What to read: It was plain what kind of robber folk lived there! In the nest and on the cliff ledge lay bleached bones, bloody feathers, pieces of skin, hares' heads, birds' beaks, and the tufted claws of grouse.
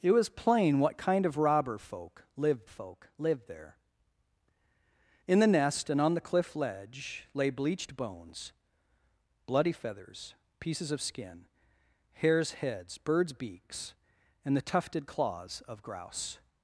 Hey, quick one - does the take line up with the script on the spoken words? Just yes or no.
no